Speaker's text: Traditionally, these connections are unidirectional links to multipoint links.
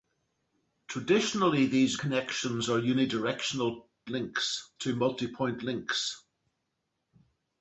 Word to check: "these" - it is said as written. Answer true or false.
true